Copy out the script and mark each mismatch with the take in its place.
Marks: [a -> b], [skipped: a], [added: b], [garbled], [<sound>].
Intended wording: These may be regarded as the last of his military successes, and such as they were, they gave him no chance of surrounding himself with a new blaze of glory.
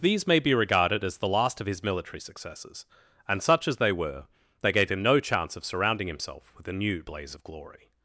These may be regarded as the last of his military successes, and such as they were, they gave him no chance of surrounding himself with a new blaze of glory.